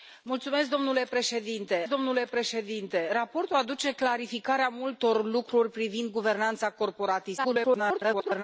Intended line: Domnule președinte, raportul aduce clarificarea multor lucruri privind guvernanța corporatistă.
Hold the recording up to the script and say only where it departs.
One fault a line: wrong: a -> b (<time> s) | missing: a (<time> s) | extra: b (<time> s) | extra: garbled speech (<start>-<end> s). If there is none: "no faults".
extra: domnule președinte (1.9 s)
extra: garbled speech (7.4-8.4 s)